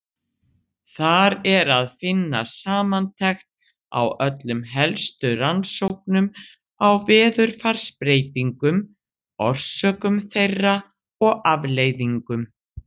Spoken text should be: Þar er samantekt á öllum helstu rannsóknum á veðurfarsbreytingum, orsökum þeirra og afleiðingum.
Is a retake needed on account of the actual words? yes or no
yes